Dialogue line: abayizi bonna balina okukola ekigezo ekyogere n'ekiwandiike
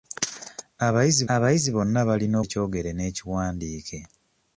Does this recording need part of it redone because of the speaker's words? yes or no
yes